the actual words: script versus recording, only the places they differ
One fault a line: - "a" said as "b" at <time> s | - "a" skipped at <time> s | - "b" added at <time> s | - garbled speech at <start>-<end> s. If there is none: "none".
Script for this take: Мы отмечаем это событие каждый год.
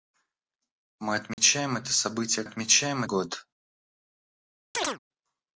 - "каждый" said as "отмечаем" at 2.4 s